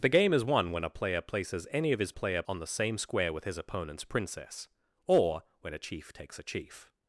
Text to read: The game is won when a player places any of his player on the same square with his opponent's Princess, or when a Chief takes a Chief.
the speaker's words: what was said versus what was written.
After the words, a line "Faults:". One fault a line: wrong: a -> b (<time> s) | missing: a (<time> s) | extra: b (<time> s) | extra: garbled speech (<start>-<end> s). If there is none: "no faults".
The game is won when a player places any of his player on the same square with his opponent's Princess, or when a Chief takes a Chief.
Faults:
no faults